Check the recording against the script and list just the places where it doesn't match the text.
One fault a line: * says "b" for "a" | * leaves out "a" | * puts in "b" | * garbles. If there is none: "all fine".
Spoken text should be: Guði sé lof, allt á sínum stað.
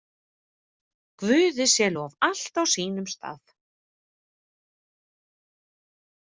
all fine